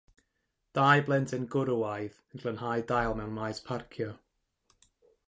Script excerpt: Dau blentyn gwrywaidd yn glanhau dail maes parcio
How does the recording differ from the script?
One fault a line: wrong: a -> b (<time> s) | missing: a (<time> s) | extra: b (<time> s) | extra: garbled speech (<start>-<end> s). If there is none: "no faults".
extra: mewn (3.2 s)